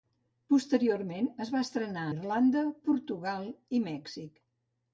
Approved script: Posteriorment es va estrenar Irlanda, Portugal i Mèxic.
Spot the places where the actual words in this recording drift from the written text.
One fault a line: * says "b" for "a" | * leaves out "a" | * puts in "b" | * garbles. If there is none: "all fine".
all fine